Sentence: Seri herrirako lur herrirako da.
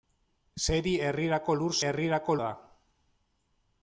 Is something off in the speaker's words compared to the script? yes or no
no